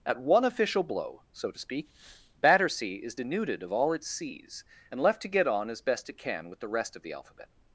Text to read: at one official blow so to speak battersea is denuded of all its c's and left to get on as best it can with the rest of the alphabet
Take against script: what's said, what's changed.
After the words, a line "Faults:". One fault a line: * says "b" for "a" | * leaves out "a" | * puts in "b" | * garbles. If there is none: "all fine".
at one official blow so to speak battersea is denuded of all its c's and left to get on as best it can with the rest of the alphabet
Faults:
all fine